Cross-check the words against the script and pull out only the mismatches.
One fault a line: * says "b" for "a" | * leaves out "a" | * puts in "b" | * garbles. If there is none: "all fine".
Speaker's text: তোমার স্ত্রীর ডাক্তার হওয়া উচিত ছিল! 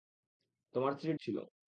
* leaves out "ডাক্তার হওয়া উচিত"